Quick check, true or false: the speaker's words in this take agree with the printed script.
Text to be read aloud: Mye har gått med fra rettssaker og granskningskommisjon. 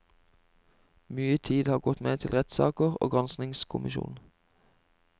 false